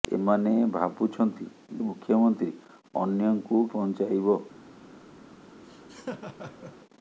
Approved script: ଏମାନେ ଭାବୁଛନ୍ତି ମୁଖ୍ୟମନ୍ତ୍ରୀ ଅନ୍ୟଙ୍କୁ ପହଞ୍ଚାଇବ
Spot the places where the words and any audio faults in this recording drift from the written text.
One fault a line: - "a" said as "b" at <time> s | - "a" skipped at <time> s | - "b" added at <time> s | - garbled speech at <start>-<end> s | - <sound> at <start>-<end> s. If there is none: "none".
- laugh at 5.6-6.8 s